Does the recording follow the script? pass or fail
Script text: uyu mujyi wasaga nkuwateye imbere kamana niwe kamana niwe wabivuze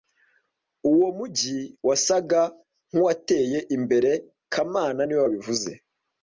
fail